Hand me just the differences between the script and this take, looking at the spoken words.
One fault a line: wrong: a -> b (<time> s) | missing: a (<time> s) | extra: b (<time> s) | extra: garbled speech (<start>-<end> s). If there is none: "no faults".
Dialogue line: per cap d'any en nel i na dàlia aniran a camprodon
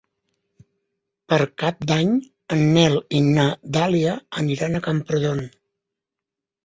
no faults